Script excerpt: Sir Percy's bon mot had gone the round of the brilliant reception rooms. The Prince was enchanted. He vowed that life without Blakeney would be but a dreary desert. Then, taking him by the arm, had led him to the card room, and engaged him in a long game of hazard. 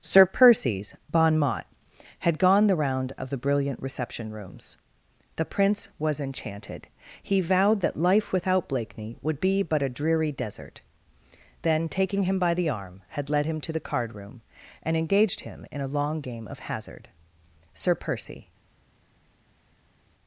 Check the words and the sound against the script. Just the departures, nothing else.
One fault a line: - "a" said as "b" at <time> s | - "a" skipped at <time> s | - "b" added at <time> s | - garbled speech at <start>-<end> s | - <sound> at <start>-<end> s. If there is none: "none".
- "Sir Percy" added at 17.8 s